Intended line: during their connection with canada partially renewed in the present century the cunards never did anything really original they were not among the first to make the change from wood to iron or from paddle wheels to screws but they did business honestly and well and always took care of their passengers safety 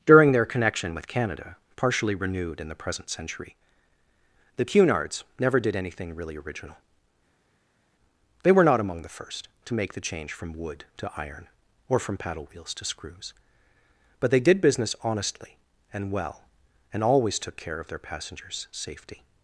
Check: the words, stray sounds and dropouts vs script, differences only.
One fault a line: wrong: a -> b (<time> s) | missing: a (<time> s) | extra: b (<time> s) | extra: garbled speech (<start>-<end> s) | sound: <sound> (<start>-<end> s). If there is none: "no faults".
no faults